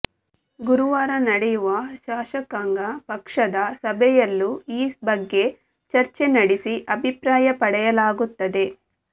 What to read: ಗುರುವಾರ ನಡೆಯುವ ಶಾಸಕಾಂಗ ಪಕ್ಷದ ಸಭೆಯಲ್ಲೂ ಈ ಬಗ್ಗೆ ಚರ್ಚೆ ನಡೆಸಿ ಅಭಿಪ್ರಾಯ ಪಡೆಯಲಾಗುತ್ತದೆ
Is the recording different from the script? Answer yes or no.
no